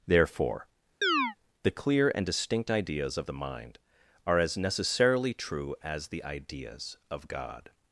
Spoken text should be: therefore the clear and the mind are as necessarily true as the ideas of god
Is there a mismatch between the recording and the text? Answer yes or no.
yes